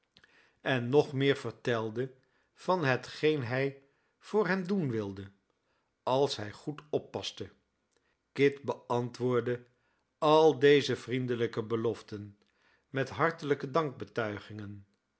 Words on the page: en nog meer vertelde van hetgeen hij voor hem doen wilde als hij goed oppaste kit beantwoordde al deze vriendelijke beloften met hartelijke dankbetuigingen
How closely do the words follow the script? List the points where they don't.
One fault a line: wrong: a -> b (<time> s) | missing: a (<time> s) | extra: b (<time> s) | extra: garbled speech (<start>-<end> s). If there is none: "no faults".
no faults